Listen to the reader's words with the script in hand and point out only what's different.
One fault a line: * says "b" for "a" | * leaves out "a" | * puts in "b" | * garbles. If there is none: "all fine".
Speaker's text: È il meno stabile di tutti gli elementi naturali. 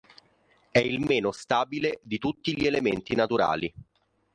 all fine